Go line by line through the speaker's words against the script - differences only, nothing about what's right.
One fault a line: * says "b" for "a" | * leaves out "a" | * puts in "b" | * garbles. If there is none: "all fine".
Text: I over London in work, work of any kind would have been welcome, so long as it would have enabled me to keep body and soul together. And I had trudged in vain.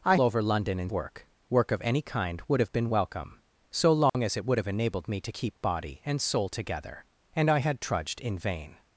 all fine